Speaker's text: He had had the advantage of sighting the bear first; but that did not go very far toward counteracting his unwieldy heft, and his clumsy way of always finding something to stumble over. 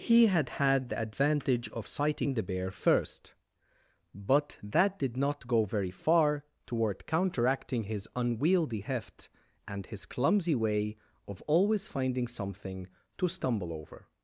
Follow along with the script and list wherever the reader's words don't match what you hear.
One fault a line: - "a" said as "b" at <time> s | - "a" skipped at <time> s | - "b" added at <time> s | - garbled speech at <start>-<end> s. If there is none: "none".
none